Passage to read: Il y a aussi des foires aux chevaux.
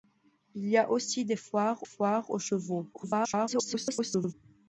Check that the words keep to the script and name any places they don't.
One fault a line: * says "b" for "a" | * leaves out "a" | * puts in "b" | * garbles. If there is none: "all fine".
* puts in "foires"
* garbles